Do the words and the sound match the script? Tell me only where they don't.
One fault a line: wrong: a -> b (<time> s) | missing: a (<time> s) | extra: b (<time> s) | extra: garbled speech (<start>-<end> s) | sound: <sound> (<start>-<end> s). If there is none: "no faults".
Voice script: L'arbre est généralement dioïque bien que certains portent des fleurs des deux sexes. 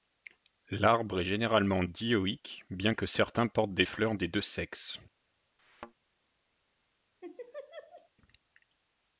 sound: thud (5.6-5.9 s)
sound: laugh (7.2-8.1 s)